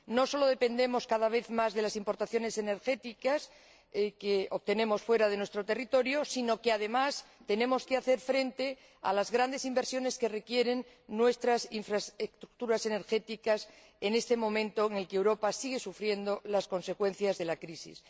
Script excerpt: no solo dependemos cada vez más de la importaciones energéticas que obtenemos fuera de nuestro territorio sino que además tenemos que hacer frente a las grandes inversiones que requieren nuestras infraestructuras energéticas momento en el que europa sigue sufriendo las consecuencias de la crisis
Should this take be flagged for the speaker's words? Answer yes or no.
yes